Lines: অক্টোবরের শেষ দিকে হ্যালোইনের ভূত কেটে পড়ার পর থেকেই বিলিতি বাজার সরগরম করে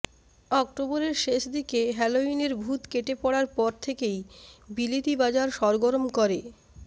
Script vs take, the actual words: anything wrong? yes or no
no